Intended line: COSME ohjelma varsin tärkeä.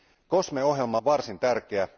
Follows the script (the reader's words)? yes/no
yes